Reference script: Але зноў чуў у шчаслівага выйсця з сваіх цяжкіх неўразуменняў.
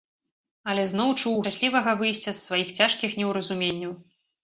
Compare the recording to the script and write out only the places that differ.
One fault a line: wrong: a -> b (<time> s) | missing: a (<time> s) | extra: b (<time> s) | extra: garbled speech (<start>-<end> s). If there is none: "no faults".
no faults